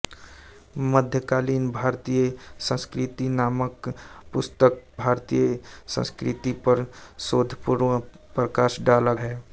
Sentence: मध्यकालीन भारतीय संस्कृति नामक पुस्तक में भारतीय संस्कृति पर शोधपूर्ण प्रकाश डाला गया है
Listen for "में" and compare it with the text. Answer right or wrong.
wrong